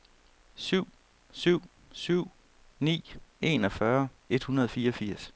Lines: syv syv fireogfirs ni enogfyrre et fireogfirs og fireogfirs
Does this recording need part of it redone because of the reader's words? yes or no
yes